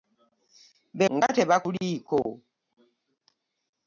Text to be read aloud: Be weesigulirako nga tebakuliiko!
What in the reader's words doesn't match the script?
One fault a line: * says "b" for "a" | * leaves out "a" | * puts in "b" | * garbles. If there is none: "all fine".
* leaves out "weesigulirako"